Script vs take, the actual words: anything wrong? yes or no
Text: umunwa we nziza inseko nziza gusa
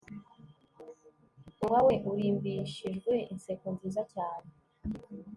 yes